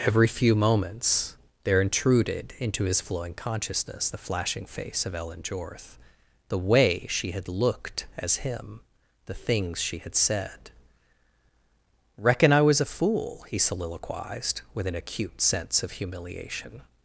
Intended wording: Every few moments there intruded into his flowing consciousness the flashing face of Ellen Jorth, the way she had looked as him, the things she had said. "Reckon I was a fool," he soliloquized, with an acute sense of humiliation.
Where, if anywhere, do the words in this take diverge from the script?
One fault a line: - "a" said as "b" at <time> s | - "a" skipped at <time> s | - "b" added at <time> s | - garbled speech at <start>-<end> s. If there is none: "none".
none